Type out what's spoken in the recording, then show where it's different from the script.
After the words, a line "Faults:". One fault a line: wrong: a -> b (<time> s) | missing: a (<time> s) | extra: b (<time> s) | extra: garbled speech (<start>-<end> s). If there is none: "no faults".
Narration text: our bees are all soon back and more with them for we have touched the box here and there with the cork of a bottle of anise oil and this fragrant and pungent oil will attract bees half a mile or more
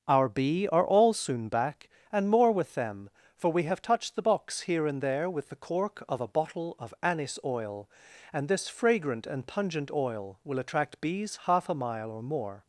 our bee are all soon back and more with them for we have touched the box here and there with the cork of a bottle of anise oil and this fragrant and pungent oil will attract bees half a mile or more
Faults:
wrong: bees -> bee (0.3 s)